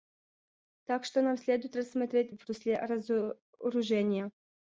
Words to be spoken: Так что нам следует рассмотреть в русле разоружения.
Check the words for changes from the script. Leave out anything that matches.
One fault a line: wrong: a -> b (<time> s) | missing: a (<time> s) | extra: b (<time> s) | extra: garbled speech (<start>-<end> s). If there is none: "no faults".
no faults